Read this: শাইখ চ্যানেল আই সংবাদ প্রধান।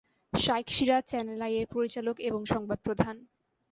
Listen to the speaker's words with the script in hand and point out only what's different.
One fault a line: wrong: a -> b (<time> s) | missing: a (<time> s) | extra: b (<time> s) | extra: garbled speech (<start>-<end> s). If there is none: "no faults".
extra: সিরাজ (0.7 s)
extra: এর পরিচালক এবং (1.6 s)